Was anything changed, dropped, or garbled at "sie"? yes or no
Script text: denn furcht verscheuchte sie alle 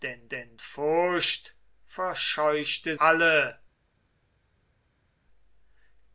yes